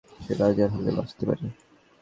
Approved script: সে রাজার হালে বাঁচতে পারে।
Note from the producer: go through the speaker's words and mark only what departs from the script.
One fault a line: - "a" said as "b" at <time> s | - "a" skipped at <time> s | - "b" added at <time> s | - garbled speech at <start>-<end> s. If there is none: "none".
none